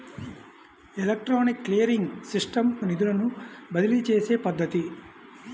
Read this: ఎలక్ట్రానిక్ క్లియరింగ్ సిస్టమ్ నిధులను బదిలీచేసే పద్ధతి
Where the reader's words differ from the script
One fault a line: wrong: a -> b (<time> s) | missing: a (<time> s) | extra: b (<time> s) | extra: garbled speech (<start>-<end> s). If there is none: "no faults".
no faults